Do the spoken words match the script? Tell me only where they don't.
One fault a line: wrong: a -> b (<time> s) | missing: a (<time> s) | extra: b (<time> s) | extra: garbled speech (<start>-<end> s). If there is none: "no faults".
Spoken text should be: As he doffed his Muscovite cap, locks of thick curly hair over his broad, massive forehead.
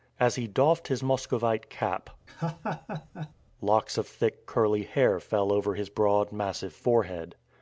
extra: fell (5.2 s)